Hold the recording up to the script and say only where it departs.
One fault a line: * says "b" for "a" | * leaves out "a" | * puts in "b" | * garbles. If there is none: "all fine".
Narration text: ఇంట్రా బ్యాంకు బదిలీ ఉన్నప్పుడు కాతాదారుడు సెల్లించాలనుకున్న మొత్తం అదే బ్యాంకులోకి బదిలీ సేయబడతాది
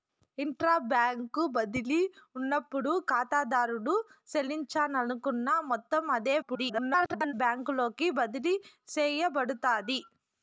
* garbles